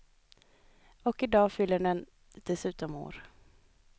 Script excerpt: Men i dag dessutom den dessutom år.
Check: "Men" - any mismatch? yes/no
yes